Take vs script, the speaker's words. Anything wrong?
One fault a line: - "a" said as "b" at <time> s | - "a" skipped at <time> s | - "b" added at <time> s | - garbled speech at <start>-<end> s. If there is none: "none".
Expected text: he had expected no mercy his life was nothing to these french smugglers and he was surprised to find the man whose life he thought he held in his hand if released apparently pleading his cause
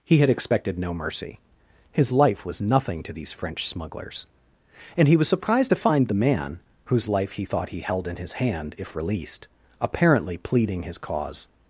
none